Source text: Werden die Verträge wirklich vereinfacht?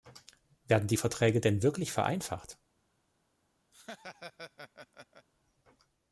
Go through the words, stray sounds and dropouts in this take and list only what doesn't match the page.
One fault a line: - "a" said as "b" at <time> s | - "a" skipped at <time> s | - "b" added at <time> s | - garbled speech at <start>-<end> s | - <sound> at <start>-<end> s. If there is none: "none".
- "denn" added at 1.4 s
- laugh at 3.7-5.3 s